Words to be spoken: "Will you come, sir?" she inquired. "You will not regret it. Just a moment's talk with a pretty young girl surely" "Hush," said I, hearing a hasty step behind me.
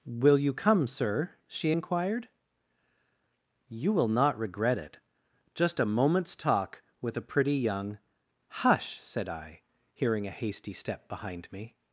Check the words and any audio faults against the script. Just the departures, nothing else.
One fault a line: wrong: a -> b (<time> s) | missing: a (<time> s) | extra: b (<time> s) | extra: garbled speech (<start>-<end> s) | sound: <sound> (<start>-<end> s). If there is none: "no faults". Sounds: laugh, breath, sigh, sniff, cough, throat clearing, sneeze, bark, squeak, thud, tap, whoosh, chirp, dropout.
missing: girl surely (8.0 s)